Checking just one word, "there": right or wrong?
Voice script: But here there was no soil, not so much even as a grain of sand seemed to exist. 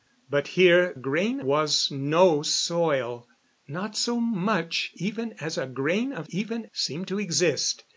wrong